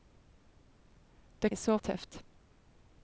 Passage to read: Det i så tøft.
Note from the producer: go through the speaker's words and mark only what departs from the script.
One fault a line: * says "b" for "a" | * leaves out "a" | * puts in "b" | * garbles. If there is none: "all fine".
all fine